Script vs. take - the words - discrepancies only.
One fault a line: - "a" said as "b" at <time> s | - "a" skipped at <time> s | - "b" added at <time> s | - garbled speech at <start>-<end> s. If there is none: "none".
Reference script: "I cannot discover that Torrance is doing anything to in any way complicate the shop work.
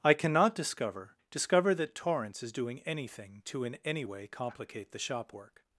- "discover" added at 1.3 s